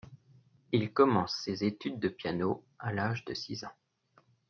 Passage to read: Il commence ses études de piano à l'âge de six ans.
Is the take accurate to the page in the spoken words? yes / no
yes